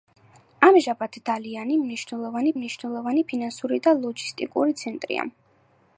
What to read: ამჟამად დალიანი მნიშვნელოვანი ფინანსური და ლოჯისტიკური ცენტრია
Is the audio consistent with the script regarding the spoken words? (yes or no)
no